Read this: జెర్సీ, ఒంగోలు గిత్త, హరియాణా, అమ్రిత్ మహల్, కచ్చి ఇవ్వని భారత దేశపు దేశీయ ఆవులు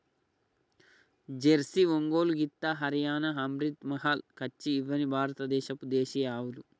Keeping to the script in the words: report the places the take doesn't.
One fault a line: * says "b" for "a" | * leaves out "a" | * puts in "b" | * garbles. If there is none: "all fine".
all fine